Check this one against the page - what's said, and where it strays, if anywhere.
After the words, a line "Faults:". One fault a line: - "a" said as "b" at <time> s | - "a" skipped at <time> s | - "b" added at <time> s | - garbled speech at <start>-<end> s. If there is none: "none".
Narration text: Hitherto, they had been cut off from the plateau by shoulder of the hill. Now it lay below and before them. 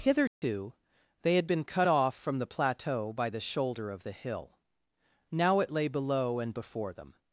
Hitherto, they had been cut off from the plateau by the shoulder of the hill. Now it lay below and before them.
Faults:
- "the" added at 3.3 s